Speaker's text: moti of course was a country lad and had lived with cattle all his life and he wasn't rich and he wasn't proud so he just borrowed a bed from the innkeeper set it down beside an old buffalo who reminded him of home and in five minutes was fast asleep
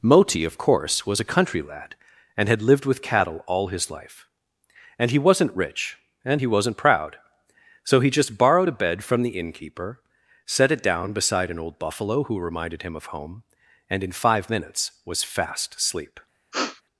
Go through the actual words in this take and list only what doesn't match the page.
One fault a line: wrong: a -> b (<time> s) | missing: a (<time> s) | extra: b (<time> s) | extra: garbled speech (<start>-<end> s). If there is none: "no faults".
no faults